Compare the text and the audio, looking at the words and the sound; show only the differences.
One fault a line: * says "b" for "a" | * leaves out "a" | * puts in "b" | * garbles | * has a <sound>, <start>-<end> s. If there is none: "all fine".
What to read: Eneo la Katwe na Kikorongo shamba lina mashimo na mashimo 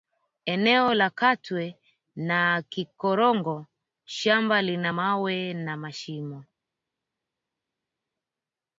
* says "mawe" for "mashimo"